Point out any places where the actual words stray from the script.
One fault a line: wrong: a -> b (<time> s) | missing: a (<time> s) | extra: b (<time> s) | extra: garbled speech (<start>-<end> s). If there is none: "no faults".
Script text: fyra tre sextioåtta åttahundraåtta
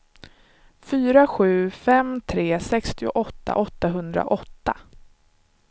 extra: sju fem (1.2 s)